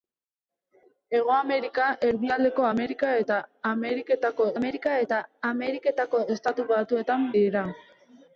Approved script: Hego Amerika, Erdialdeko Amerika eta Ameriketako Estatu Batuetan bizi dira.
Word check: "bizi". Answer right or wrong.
wrong